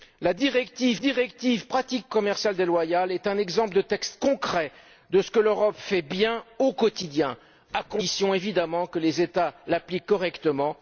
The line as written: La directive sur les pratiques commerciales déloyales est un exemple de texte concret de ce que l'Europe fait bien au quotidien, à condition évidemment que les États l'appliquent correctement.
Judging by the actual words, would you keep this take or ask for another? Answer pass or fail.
fail